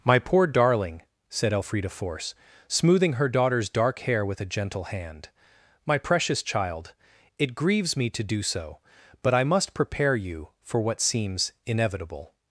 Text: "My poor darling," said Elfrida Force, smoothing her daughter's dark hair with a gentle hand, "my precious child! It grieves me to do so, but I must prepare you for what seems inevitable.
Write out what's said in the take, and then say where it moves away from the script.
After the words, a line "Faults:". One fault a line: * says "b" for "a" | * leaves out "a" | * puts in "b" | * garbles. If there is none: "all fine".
"My poor darling," said Elfrida Force, smoothing her daughter's dark hair with a gentle hand, "my precious child! It grieves me to do so, but I must prepare you for what seems inevitable.
Faults:
all fine